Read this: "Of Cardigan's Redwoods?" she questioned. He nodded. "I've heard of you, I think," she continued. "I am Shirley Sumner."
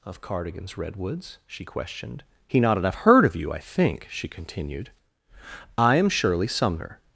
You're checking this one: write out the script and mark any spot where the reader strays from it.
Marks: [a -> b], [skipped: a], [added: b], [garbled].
"Of Cardigan's Redwoods?" she questioned. He nodded. "I've heard of you, I think," she continued. "I am Shirley Sumner."